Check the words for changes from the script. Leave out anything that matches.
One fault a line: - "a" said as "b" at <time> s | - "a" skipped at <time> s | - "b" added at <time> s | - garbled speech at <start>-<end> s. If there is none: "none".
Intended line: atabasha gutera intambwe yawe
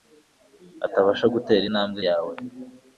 none